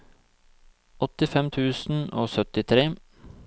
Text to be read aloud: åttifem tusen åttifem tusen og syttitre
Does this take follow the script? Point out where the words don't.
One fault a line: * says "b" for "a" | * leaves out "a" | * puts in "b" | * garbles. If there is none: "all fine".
* leaves out "åttifem tusen"